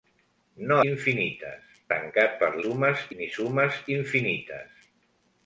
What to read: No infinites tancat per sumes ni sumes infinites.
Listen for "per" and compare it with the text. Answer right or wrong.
right